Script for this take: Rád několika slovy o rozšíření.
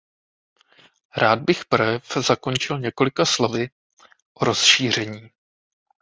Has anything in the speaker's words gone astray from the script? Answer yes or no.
yes